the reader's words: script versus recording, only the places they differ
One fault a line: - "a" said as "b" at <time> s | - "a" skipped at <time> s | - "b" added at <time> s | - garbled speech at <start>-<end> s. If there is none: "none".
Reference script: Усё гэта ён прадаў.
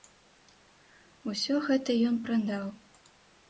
none